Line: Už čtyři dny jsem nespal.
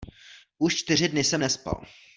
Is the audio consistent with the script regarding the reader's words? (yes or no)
yes